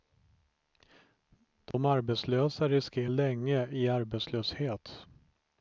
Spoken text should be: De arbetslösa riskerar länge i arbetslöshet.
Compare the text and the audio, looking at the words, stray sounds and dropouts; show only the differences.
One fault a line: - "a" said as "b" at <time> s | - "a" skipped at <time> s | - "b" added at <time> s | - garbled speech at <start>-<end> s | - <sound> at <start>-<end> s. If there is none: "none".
- dropout at 1.7-1.7 s